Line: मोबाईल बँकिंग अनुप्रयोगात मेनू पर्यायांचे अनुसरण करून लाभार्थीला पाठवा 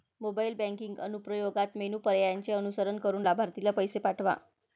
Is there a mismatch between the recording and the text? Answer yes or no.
yes